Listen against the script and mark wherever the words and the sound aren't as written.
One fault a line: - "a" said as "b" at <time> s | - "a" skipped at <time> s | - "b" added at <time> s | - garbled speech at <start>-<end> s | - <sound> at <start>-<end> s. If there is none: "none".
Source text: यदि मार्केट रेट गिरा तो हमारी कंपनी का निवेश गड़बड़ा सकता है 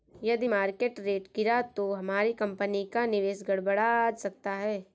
none